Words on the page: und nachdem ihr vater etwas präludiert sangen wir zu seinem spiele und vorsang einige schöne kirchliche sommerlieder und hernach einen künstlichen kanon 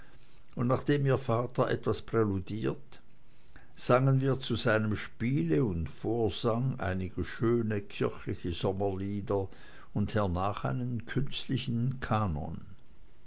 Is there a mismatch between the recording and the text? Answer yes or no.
no